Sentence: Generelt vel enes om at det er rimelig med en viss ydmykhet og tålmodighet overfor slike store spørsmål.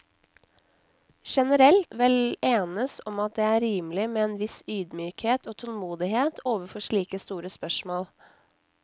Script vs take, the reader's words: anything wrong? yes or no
no